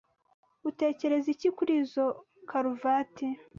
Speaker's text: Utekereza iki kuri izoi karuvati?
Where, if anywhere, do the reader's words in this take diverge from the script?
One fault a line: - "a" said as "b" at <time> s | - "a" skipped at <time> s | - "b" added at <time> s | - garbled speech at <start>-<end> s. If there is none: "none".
none